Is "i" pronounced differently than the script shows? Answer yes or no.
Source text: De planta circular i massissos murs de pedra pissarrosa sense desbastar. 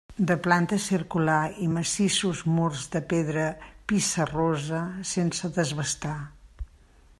no